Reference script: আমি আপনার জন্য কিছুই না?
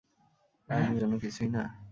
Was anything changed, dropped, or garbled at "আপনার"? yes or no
yes